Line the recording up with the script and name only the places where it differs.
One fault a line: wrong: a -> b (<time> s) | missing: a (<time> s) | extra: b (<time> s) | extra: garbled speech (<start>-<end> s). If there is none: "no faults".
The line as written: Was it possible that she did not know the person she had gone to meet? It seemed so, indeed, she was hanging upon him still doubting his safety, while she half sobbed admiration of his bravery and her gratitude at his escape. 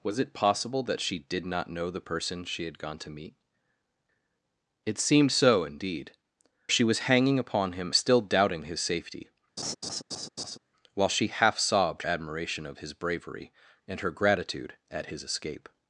no faults